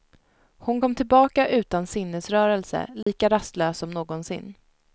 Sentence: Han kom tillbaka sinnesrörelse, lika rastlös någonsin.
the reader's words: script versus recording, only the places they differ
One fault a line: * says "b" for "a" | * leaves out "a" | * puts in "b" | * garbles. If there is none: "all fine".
* says "Hon" for "Han"
* puts in "utan"
* puts in "som"